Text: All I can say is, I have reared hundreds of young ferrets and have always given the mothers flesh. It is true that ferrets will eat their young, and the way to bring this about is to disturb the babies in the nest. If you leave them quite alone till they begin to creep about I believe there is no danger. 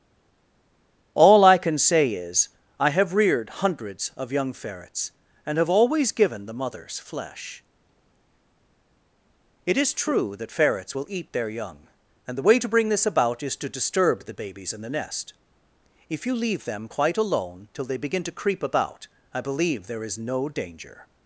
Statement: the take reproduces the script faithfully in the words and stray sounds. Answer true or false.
true